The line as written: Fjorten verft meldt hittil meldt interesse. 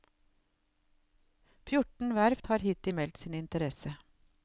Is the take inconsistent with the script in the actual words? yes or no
yes